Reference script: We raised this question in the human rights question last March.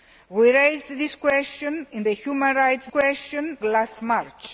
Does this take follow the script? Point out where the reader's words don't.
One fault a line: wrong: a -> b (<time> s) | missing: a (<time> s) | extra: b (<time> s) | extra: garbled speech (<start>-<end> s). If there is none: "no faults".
no faults